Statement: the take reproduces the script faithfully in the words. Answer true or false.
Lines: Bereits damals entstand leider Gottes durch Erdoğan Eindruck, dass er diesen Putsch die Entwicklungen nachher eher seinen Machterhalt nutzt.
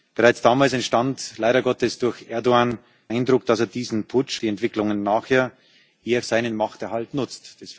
true